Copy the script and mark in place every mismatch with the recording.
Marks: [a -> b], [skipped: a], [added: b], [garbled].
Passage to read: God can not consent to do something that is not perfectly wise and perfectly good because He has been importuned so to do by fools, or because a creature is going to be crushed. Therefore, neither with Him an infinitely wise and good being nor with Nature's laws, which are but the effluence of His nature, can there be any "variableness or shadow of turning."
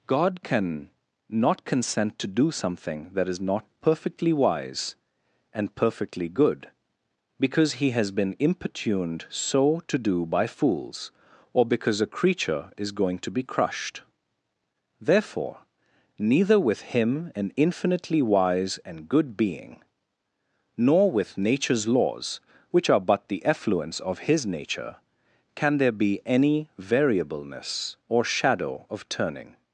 God can not consent to do something that is not perfectly wise and perfectly good because He has been importuned so to do by fools, or because a creature is going to be crushed. Therefore, neither with Him an infinitely wise and good being nor with Nature's laws, which are but the effluence of His nature, can there be any "variableness or shadow of turning."